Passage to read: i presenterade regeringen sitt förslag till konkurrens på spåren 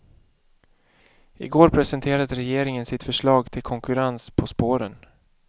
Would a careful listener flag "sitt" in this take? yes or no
no